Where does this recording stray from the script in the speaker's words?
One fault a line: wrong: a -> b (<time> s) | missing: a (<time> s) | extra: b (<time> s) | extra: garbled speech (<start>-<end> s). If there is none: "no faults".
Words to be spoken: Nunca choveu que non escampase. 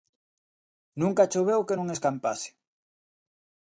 no faults